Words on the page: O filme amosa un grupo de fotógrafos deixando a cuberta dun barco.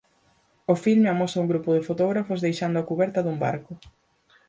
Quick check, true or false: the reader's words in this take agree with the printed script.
true